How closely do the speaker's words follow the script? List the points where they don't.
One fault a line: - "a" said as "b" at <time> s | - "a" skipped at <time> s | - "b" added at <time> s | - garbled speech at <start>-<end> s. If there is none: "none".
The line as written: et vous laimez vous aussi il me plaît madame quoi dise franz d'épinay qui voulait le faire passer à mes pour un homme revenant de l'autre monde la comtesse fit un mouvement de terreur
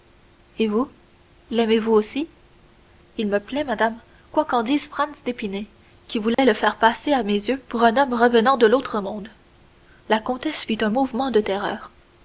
- "qu'en" added at 4.5 s
- "yeux" added at 7.3 s